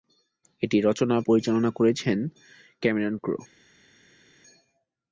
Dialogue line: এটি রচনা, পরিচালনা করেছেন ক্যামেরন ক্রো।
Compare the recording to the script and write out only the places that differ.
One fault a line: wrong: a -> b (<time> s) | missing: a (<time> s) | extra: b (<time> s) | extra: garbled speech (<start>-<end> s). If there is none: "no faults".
no faults